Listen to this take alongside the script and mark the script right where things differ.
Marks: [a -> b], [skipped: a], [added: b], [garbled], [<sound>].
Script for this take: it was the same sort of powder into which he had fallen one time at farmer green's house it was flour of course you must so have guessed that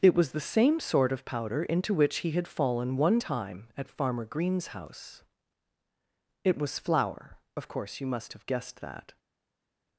it was the same sort of powder into which he had fallen one time at farmer green's house it was flour of course you must [skipped: so] have guessed that